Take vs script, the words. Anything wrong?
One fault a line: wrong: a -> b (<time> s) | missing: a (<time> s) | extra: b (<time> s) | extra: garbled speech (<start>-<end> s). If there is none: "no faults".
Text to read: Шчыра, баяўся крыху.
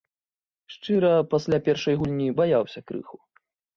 extra: пасля першай гульні (1.3 s)